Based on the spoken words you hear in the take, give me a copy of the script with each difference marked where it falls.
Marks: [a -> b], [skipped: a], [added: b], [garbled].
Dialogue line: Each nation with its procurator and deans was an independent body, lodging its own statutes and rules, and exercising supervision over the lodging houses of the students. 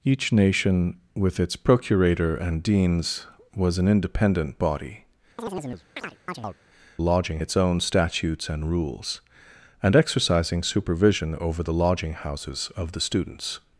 Each nation with its procurator and deans was an independent body, lodging its own statutes and rules, and exercising supervision over the lodging houses of the students.